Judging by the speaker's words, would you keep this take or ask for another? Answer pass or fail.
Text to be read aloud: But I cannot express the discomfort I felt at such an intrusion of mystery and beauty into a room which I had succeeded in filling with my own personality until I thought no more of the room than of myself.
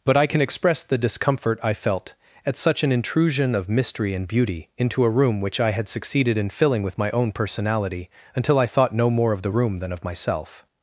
fail